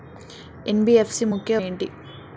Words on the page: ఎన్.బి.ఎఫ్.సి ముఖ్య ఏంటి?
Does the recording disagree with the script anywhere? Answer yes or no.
no